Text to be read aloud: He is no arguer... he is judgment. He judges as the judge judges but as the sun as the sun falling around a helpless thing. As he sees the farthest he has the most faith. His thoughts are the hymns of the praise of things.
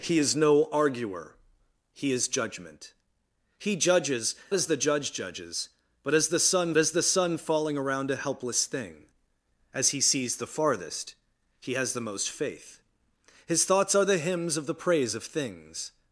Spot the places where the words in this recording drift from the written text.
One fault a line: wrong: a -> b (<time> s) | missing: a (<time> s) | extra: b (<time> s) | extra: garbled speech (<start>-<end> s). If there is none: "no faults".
no faults